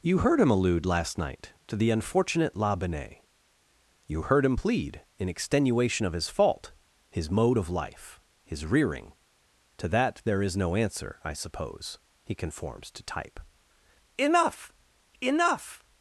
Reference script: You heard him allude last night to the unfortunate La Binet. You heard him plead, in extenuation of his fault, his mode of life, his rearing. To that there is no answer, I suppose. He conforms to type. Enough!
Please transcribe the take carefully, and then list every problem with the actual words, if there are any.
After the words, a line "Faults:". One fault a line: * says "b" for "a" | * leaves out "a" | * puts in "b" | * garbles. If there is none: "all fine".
You heard him allude last night to the unfortunate La Binet. You heard him plead, in extenuation of his fault, his mode of life, his rearing. To that there is no answer, I suppose. He conforms to type. Enough Enough!
Faults:
* puts in "Enough"